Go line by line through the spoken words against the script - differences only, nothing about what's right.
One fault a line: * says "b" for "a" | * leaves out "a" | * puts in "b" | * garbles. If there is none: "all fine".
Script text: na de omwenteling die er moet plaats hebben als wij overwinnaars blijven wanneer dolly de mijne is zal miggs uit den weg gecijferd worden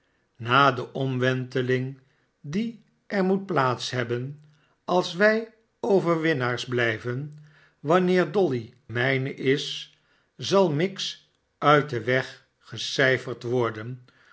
* leaves out "de"